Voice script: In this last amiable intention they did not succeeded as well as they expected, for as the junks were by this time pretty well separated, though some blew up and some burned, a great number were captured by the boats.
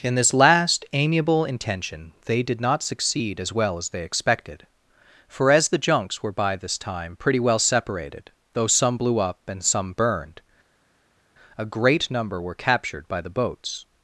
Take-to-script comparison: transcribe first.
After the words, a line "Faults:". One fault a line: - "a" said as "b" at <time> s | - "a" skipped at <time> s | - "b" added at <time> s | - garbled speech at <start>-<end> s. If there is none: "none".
In this last amiable intention they did not succeed as well as they expected, for as the junks were by this time pretty well separated, though some blew up and some burned, a great number were captured by the boats.
Faults:
- "succeeded" said as "succeed" at 2.8 s